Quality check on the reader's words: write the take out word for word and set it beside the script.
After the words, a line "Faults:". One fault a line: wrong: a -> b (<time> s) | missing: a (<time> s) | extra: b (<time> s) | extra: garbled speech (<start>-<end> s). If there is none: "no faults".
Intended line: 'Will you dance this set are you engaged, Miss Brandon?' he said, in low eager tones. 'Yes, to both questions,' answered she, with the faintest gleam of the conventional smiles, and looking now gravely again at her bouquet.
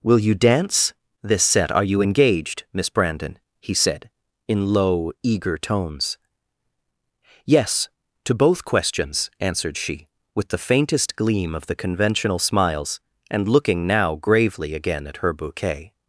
'Will you dance this set are you engaged, Miss Brandon?' he said, in low eager tones. 'Yes, to both questions,' answered she, with the faintest gleam of the conventional smiles, and looking now gravely again at her bouquet.
Faults:
no faults